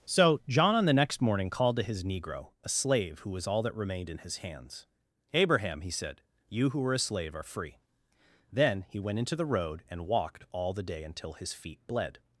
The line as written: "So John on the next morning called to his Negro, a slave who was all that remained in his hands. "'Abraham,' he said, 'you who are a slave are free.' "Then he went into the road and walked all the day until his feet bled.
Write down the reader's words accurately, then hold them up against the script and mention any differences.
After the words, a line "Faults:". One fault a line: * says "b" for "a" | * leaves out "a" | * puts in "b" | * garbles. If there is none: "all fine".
"So John on the next morning called to his Negro, a slave who was all that remained in his hands. "'Abraham,' he said, 'you who were a slave are free.' "Then he went into the road and walked all the day until his feet bled.
Faults:
* says "were" for "are"